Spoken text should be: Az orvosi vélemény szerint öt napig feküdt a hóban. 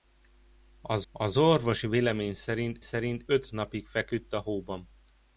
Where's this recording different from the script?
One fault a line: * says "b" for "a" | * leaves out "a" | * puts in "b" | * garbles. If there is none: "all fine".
* puts in "az"
* puts in "szerint"